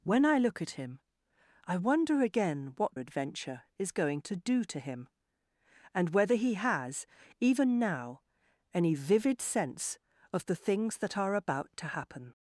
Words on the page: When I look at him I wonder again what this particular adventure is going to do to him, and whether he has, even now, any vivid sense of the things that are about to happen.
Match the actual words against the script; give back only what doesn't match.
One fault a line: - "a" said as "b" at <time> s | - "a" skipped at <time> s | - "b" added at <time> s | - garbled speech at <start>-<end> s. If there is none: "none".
- "this particular" skipped at 2.9 s